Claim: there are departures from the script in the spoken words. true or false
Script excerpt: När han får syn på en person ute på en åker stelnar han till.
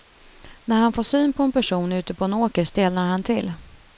false